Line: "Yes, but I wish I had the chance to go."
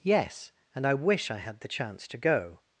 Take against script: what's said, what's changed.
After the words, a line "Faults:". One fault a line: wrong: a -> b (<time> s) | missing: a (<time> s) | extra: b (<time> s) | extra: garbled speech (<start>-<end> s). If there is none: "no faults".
"Yes, and I wish I had the chance to go."
Faults:
wrong: but -> and (0.7 s)